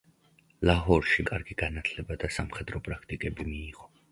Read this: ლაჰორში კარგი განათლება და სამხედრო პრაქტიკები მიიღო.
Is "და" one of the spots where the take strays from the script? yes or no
no